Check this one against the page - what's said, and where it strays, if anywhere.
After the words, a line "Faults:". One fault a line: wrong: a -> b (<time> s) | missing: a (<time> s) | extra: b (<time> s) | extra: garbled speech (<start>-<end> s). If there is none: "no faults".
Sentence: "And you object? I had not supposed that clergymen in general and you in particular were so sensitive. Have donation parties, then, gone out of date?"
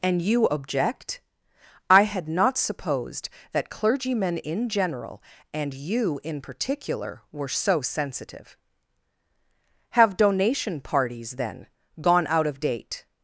"And you object? I had not supposed that clergymen in general and you in particular were so sensitive. Have donation parties, then, gone out of date?"
Faults:
no faults